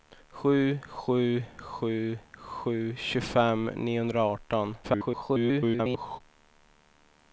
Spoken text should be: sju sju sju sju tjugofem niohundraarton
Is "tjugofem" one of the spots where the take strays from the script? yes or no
no